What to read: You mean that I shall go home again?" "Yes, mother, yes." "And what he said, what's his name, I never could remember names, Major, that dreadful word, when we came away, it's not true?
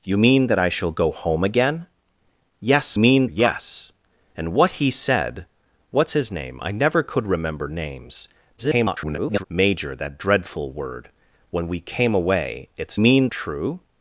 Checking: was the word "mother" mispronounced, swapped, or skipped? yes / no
yes